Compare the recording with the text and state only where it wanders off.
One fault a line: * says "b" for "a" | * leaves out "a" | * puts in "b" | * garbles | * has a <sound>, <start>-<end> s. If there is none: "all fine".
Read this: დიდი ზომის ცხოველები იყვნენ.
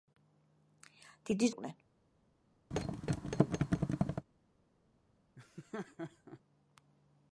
* leaves out "ზომის ცხოველები"
* has a thud, 2.7-4.3 s
* has a laugh, 5.4-6.4 s